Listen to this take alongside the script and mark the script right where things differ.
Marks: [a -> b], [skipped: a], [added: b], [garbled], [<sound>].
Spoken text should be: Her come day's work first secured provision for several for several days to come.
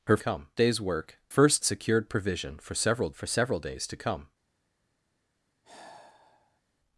Her come day's work first secured provision for several for several days to come. [sigh]